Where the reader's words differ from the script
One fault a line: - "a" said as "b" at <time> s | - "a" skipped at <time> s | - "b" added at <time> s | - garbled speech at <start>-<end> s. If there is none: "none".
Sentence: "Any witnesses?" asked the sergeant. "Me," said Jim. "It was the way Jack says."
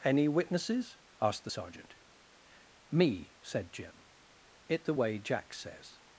- "was" skipped at 4.8 s